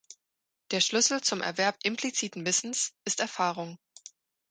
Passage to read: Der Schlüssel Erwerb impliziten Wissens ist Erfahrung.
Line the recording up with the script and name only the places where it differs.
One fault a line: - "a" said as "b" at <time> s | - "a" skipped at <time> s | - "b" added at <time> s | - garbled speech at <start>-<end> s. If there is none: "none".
- "zum" added at 1.2 s